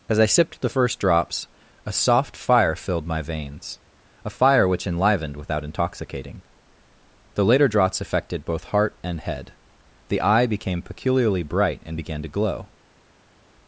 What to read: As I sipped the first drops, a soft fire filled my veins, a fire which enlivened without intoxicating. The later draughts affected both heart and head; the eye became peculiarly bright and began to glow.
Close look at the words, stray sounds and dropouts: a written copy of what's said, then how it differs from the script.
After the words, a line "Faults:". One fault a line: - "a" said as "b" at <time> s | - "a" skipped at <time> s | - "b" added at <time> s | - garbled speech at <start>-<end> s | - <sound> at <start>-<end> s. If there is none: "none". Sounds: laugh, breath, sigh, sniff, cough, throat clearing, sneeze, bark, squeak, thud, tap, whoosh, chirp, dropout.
As I sipped the first drops, a soft fire filled my veins, a fire which enlivened without intoxicating. The later draughts affected both heart and head; the eye became peculiarly bright and began to glow.
Faults:
none